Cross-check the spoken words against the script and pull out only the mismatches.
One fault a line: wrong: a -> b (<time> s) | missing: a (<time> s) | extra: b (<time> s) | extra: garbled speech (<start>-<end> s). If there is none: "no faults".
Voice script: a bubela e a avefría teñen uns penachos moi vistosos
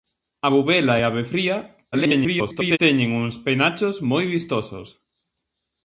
extra: garbled speech (1.9-2.8 s)